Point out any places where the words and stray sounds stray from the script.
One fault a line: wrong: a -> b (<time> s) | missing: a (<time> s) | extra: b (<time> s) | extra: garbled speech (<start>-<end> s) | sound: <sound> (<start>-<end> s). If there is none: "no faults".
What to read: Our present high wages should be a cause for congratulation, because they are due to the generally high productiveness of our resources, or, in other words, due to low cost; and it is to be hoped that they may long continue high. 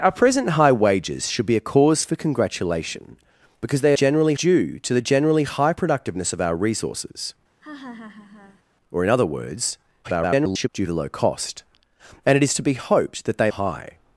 wrong: are -> generally (3.9 s)
sound: laugh (7.6-8.6 s)
extra: garbled speech (10.0-10.7 s)
missing: may long continue (13.5 s)